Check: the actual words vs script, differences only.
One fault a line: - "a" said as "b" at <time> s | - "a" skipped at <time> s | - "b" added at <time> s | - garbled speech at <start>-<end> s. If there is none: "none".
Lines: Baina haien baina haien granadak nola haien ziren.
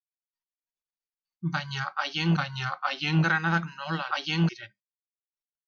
none